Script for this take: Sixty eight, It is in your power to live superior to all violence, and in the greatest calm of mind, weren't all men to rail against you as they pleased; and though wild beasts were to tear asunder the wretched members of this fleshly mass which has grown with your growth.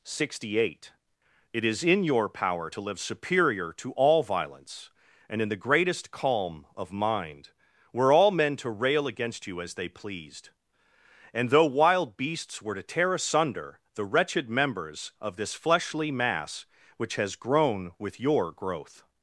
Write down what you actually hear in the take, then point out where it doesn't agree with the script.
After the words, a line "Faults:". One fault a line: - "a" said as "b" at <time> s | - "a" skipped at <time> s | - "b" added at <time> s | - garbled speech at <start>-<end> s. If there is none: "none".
Sixty eight, It is in your power to live superior to all violence, and in the greatest calm of mind, were all men to rail against you as they pleased; and though wild beasts were to tear asunder the wretched members of this fleshly mass which has grown with your growth.
Faults:
- "weren't" said as "were" at 7.9 s